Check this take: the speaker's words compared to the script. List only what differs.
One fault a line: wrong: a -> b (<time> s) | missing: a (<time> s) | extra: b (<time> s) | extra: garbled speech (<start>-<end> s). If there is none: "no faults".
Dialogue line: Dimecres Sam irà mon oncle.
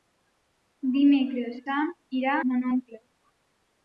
no faults